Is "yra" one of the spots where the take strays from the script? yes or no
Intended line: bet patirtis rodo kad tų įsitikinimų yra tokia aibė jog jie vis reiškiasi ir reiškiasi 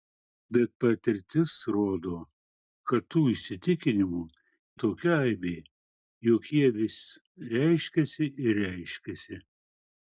yes